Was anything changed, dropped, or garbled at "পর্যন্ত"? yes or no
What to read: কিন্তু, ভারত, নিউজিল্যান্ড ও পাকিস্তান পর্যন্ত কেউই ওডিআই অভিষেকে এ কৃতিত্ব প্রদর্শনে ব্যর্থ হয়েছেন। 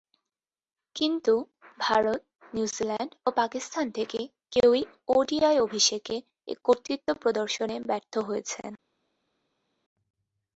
yes